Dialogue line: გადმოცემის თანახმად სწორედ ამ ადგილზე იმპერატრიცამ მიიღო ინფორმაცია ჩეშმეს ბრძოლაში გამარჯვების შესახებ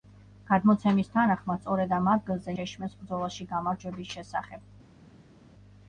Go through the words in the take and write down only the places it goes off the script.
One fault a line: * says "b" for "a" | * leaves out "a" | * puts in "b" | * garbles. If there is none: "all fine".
* leaves out "იმპერატრიცამ მიიღო ინფორმაცია"